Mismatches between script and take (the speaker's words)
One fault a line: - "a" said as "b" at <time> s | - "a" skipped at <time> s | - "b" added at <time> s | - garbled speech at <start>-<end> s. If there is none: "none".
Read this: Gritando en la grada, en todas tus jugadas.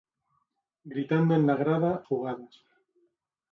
- "en todas tus" skipped at 2.0 s